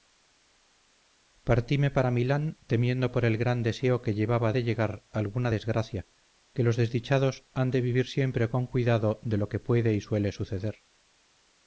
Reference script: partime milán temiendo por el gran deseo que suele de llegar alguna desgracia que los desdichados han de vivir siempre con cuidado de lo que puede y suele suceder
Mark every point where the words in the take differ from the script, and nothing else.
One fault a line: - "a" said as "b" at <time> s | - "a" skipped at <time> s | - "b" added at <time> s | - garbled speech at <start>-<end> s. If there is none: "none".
- "para" added at 1.9 s
- "suele" said as "llevaba" at 4.2 s